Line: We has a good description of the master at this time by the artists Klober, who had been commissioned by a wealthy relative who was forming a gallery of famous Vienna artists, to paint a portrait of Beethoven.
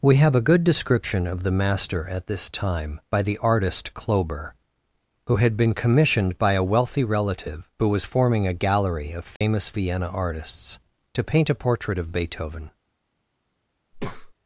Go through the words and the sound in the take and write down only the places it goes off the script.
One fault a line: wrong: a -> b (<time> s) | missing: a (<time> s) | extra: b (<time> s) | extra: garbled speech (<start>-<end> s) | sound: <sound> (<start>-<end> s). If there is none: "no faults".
wrong: has -> have (0.1 s)
wrong: artists -> artist (3.4 s)
sound: dropout (9.4-9.4 s)
sound: breath (13.9-14.3 s)